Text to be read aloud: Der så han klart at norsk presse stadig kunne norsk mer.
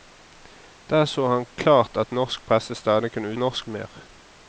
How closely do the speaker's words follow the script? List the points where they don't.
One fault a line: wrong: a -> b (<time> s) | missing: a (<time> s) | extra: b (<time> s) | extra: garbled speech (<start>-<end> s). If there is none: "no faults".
no faults